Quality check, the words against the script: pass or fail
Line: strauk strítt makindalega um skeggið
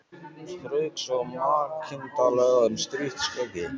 fail